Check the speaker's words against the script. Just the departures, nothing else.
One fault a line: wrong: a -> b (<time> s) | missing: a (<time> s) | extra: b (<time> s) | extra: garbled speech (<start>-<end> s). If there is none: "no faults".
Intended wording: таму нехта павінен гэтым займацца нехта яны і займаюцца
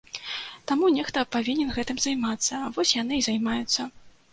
wrong: нехта -> вось (2.8 s)